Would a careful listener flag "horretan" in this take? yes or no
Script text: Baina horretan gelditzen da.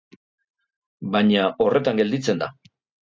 no